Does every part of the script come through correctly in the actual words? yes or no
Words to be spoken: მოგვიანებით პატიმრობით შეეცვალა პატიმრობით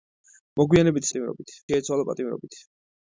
yes